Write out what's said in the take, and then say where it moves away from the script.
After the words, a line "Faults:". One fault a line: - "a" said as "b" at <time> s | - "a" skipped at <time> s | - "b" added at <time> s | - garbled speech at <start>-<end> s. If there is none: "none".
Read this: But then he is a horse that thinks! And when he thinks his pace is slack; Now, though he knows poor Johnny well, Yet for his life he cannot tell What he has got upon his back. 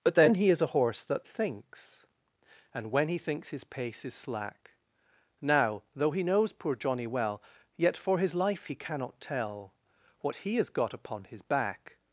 But then he is a horse that thinks! And when he thinks his pace is slack; Now, though he knows poor Johnny well, Yet for his life he cannot tell What he has got upon his back.
Faults:
none